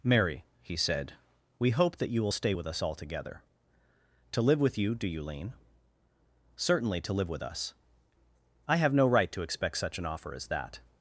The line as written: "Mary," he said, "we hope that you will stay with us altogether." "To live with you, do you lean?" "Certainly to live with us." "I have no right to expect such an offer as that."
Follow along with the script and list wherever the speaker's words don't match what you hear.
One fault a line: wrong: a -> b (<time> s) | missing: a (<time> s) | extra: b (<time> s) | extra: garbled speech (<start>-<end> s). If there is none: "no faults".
no faults